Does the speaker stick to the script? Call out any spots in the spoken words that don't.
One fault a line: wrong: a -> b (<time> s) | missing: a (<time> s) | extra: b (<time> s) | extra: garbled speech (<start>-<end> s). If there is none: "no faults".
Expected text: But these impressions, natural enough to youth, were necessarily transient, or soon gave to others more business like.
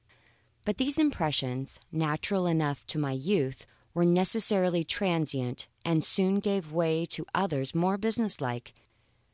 extra: my (3.0 s)
wrong: or -> and (5.8 s)
extra: way (6.7 s)